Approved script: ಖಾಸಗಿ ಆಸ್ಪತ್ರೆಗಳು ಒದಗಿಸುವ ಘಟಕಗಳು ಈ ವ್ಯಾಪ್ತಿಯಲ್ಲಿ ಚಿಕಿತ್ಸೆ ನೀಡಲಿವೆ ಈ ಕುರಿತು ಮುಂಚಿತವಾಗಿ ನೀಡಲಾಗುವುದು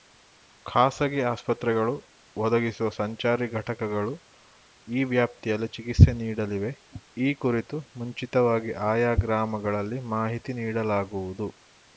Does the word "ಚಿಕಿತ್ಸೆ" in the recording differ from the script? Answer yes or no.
no